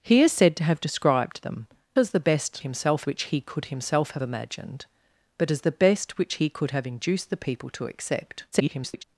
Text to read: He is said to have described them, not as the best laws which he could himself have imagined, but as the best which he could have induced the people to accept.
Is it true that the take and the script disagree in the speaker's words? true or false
true